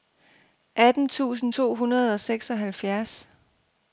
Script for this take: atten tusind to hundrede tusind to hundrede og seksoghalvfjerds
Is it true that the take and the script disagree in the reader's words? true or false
true